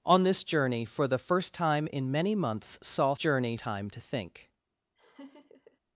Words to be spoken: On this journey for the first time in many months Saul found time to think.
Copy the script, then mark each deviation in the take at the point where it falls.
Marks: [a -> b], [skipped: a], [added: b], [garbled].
On this journey for the first time in many months Saul [found -> journey] time to think.